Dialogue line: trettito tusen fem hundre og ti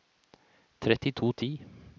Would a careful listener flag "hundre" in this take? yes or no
yes